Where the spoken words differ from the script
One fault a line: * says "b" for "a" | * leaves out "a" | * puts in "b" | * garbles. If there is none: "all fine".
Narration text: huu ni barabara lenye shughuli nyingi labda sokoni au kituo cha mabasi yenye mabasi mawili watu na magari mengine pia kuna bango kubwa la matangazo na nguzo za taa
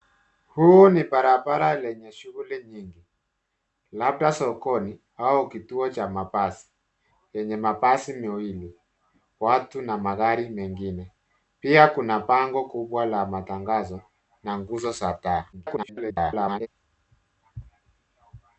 * garbles